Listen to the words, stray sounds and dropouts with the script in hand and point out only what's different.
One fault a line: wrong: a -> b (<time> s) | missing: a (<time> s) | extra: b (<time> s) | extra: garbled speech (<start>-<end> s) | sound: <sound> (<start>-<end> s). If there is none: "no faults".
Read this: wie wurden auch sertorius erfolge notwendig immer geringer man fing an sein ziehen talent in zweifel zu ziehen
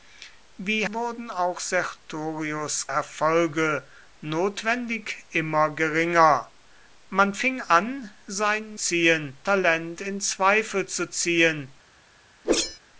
sound: whoosh (12.4-12.8 s)